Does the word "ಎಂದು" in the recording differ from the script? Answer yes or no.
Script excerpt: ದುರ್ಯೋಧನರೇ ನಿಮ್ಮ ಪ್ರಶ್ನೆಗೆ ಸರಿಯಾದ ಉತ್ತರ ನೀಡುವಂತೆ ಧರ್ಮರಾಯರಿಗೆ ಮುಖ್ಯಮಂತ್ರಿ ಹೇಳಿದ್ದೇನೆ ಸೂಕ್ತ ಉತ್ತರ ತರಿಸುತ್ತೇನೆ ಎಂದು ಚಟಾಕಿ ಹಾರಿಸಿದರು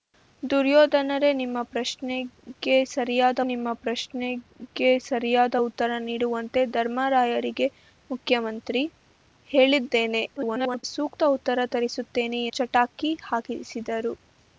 yes